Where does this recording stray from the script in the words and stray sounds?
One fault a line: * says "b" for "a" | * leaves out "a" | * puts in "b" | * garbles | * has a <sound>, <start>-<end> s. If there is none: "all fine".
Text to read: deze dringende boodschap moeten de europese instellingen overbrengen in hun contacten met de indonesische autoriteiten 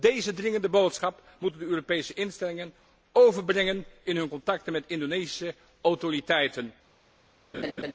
* has a laugh, 7.5-7.9 s